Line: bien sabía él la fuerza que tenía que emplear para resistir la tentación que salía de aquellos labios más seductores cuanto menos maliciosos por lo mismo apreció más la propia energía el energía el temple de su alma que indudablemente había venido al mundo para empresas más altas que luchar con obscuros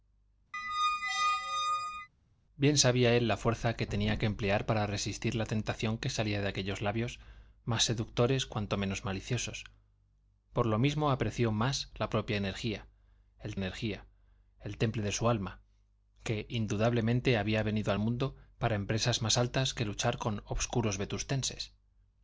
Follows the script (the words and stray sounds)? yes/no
no